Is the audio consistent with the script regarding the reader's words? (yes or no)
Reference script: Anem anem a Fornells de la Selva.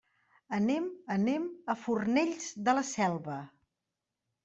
yes